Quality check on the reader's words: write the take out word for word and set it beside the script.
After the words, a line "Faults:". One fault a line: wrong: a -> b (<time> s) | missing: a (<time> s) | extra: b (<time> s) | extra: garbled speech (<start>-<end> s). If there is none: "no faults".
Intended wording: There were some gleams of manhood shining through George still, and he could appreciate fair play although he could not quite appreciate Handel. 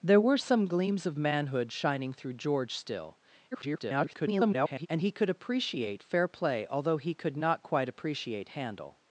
There were some gleams of manhood shining through George still, [garbled] and he could appreciate fair play although he could not quite appreciate Handel.
Faults:
extra: garbled speech (3.5-4.9 s)